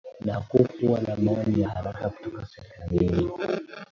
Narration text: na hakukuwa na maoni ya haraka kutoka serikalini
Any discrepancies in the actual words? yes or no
no